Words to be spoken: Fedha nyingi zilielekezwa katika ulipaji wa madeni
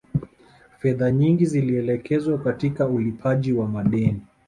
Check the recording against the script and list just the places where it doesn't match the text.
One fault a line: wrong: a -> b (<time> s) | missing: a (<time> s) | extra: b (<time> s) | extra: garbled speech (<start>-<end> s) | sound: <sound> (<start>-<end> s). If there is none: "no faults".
no faults